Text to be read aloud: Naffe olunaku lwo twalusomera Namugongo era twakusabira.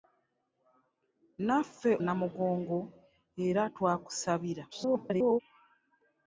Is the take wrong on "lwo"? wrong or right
wrong